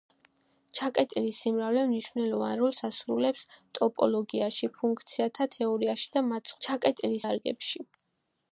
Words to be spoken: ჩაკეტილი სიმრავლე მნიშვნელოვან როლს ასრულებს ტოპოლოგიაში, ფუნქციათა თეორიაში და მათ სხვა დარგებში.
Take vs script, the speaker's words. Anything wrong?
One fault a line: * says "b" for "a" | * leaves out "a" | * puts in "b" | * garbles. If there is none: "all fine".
* says "ჩაკეტილი" for "სხვა"